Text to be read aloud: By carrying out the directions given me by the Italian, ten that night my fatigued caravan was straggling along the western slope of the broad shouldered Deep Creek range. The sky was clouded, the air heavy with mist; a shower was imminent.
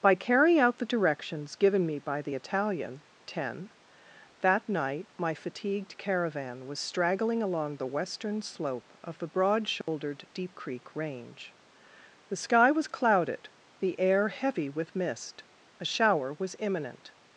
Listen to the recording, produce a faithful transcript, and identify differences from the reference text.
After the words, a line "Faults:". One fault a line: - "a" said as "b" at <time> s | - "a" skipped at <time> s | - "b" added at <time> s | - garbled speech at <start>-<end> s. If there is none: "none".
By carrying out the directions given me by the Italian, ten that night my fatigued caravan was straggling along the western slope of the broad shouldered Deep Creek range. The sky was clouded, the air heavy with mist; a shower was imminent.
Faults:
none